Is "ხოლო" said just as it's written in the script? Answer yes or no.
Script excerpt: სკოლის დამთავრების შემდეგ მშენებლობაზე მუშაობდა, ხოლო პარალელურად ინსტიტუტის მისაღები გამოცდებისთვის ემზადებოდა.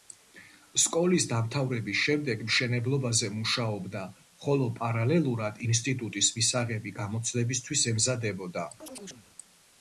yes